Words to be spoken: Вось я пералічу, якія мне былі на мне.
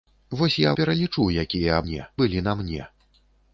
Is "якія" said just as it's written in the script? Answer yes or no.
yes